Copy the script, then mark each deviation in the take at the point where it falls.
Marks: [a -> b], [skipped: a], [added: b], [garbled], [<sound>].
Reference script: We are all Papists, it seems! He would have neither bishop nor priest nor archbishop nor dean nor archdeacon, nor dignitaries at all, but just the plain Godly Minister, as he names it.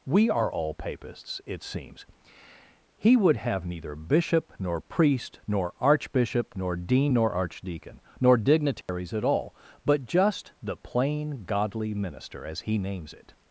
We are all Papists, it seems! He would have neither bishop nor priest nor archbishop nor dean nor archdeacon, nor dignitaries [dropout] at all, but just the plain Godly Minister, as he names it.